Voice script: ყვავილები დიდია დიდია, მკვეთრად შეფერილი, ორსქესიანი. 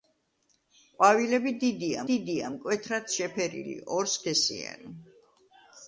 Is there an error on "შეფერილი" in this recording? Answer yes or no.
no